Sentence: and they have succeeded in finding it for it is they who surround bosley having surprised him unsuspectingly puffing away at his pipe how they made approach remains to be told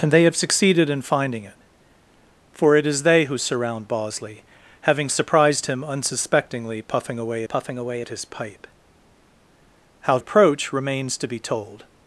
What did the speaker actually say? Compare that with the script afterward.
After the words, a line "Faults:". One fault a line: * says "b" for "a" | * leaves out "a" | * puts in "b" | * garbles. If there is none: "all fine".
and they have succeeded in finding it for it is they who surround bosley having surprised him unsuspectingly puffing away puffing away at his pipe how approach remains to be told
Faults:
* puts in "puffing away"
* leaves out "they made"